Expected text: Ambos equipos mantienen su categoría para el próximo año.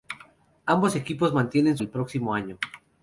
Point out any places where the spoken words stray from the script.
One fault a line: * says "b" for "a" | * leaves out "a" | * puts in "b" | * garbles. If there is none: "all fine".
* leaves out "su categoría para"